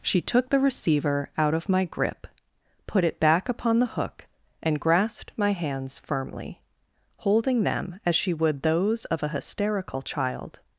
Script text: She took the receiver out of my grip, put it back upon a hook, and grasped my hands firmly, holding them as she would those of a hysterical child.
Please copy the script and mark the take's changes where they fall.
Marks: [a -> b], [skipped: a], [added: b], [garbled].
She took the receiver out of my grip, put it back upon [a -> the] hook, and grasped my hands firmly, holding them as she would those of a hysterical child.